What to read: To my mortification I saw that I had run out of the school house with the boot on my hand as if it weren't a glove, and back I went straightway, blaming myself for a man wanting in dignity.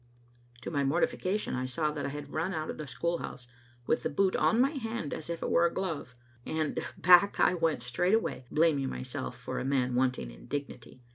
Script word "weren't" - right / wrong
wrong